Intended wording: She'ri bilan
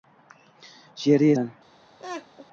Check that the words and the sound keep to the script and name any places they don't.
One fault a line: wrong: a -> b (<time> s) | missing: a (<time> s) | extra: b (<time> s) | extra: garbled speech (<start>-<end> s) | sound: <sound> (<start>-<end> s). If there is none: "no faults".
sound: laugh (2.0-2.5 s)